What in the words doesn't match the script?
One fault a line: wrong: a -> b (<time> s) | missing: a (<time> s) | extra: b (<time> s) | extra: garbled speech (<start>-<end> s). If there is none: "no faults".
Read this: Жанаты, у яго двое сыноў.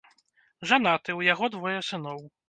no faults